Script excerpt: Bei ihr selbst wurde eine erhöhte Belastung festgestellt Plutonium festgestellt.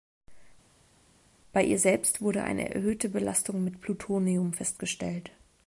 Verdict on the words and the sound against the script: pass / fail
fail